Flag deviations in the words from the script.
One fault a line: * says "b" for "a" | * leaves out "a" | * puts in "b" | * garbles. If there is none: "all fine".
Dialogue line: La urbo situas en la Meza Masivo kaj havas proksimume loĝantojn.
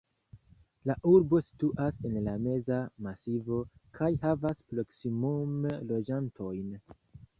all fine